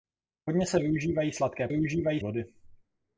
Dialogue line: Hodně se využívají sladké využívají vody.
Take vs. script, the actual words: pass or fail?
pass